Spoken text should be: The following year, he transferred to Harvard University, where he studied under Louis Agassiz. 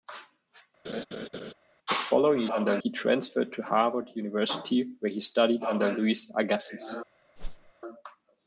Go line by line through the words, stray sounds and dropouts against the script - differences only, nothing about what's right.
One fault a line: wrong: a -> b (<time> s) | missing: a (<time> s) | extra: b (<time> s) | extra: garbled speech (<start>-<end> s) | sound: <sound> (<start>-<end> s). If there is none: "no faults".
sound: laugh (0.8-1.5 s)
wrong: year -> under (2.5 s)
sound: whoosh (7.4-7.7 s)